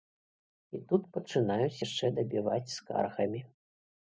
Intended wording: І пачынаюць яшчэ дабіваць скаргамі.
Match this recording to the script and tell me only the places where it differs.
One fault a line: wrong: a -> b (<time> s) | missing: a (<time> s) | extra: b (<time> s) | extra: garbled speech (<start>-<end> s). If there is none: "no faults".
extra: тут (0.9 s)